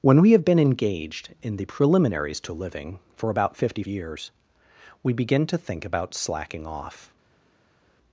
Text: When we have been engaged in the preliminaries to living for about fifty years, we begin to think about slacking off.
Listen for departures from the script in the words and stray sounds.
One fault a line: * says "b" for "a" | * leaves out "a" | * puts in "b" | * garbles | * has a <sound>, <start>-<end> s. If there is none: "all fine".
all fine